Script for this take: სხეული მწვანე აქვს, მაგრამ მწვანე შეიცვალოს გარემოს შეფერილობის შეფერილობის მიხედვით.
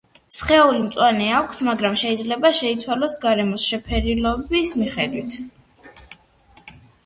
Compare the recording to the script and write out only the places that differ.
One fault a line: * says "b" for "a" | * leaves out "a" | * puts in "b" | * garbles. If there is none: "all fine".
* says "შეიძლება" for "მწვანე"
* leaves out "შეფერილობის"